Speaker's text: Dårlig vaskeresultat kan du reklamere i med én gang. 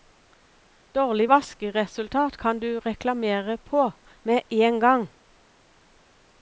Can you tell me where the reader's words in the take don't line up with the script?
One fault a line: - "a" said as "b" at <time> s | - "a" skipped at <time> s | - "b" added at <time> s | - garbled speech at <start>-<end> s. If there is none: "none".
- "i" said as "på" at 3.6 s